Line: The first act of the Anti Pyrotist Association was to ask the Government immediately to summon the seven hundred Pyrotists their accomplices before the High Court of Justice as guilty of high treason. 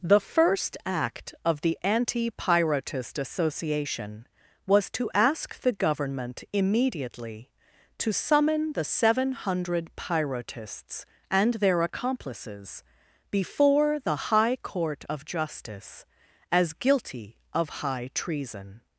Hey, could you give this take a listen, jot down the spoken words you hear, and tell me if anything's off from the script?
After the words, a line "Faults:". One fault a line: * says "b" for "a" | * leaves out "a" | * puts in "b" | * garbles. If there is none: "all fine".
The first act of the Anti Pyrotist Association was to ask the Government immediately to summon the seven hundred Pyrotists and their accomplices before the High Court of Justice as guilty of high treason.
Faults:
* puts in "and"